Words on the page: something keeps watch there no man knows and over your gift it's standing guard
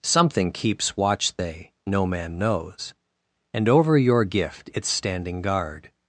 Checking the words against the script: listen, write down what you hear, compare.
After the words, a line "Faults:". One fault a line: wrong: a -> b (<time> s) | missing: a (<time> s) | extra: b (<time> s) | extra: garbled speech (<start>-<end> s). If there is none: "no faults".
something keeps watch they no man knows and over your gift it's standing guard
Faults:
wrong: there -> they (1.4 s)